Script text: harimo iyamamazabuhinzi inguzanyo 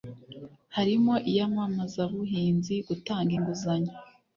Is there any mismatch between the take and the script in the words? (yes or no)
yes